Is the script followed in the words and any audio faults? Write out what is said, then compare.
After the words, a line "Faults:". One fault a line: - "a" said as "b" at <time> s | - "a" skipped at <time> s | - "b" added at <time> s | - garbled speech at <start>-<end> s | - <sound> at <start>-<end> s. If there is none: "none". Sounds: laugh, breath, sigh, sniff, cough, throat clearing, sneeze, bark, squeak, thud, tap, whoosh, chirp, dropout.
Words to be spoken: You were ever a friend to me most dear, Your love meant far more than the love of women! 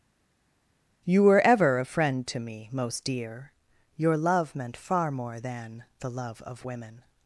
You were ever a friend to me most dear, Your love meant far more than the love of women!
Faults:
none